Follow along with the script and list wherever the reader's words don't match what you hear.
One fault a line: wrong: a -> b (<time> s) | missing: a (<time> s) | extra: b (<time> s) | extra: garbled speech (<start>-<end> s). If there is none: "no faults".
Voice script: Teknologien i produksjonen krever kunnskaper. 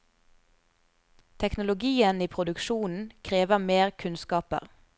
extra: mer (3.6 s)